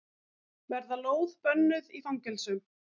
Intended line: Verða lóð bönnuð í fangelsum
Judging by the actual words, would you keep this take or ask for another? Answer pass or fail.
pass